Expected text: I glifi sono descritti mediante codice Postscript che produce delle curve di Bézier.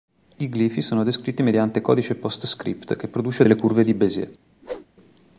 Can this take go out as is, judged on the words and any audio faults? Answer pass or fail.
fail